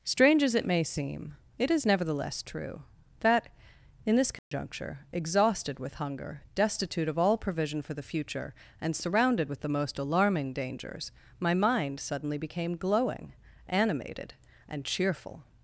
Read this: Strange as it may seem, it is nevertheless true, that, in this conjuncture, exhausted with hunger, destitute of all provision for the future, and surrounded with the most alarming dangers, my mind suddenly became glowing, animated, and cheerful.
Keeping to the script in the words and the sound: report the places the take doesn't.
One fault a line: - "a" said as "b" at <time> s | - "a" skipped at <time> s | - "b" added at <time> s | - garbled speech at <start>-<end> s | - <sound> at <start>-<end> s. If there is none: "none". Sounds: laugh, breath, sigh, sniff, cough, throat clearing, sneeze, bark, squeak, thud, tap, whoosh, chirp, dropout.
- dropout at 4.4-4.5 s